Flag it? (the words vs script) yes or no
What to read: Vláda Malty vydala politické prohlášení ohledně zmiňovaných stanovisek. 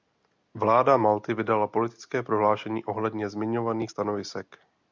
no